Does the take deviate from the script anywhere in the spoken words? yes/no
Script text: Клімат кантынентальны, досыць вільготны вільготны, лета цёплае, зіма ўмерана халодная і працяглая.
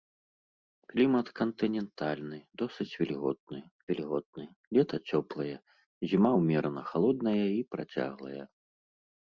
no